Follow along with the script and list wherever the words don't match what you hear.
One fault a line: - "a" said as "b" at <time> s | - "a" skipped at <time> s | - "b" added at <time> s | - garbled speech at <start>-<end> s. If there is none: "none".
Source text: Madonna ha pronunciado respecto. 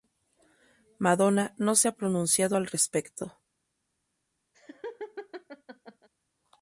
- "no se" added at 1.6 s
- "al" added at 2.5 s